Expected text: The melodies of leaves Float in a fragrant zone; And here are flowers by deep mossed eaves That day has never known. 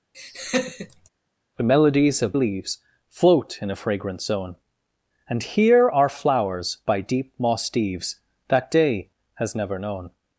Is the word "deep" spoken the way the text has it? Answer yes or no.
yes